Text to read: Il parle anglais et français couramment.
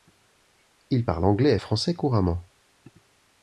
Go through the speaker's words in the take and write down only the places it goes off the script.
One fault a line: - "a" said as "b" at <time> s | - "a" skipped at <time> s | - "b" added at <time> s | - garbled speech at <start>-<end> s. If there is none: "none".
none